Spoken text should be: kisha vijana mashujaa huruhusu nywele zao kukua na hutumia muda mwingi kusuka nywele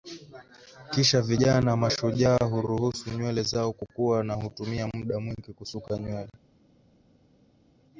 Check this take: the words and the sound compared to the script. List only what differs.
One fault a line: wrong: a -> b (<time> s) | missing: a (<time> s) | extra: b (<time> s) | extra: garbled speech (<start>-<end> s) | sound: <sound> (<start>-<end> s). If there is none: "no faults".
no faults